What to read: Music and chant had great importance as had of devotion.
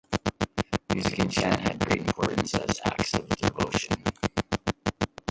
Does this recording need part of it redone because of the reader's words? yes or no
yes